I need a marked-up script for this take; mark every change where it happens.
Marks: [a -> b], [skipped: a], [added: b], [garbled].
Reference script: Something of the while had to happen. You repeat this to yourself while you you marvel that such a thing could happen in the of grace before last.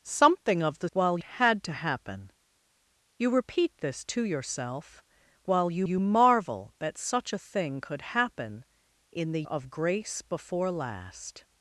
Something of the while had to happen. You repeat this to yourself while you you marvel that such a thing could happen in the of grace before last.